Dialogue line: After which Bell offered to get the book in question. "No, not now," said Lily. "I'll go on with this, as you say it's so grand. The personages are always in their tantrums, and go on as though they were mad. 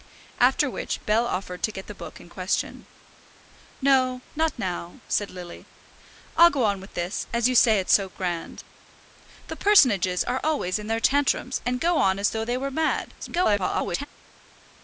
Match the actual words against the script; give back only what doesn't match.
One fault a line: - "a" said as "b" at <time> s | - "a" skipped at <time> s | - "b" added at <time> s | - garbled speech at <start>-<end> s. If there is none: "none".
- garbled speech at 13.2-14.1 s